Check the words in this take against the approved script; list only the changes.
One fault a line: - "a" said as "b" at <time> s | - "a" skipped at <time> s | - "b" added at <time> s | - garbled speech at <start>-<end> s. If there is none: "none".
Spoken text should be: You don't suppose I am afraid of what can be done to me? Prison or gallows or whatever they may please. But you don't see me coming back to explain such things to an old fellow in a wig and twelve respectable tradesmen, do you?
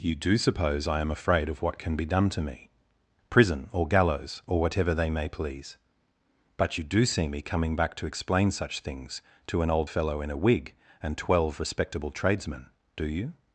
- "don't" said as "do" at 0.1 s
- "don't" said as "do" at 6.8 s